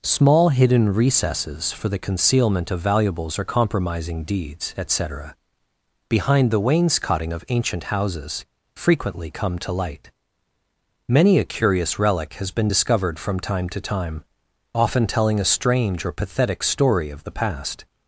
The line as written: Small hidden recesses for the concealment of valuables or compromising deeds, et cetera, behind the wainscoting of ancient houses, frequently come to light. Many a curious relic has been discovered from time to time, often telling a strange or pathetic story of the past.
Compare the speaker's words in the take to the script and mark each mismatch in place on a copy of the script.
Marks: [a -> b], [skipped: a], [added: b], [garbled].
Small hidden recesses for the concealment of valuables or compromising deeds, et cetera, behind the wainscoting of ancient houses, frequently come to light. Many a curious relic has been discovered from time to time, often telling a strange or pathetic story of the past.